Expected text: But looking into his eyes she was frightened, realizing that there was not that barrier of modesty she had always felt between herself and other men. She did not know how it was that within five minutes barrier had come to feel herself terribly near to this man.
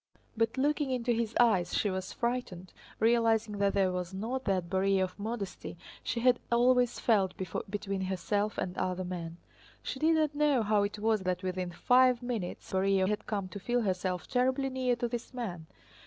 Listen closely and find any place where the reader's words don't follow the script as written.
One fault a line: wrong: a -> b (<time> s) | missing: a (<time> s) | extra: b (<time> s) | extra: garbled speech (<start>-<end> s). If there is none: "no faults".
no faults